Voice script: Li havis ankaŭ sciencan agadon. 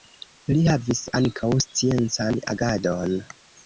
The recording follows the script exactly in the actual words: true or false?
true